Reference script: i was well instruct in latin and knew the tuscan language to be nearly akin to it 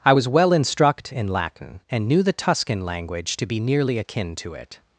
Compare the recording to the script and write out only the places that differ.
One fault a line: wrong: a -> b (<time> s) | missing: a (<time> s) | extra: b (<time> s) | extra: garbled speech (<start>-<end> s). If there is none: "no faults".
no faults